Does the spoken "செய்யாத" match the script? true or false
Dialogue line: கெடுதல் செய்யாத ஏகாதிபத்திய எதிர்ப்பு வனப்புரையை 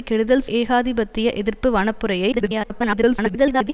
false